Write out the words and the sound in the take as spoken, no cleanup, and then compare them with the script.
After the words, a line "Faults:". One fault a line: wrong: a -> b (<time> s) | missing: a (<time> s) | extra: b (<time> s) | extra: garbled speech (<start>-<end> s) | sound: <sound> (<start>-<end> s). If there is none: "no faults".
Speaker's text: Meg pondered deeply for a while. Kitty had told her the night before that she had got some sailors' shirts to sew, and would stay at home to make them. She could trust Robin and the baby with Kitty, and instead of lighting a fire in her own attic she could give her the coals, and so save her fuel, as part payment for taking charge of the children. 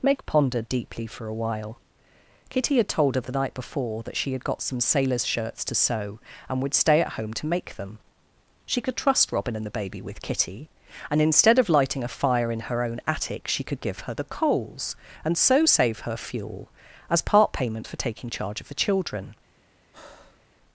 Meg pondered deeply for a while. Kitty had told her the night before that she had got some sailors' shirts to sew, and would stay at home to make them. She could trust Robin and the baby with Kitty, and instead of lighting a fire in her own attic she could give her the coals, and so save her fuel, as part payment for taking charge of the children.
Faults:
sound: breath (19.9-20.5 s)